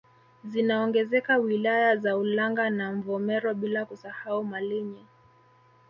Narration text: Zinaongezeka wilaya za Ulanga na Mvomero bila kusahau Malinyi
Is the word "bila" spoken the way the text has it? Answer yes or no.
yes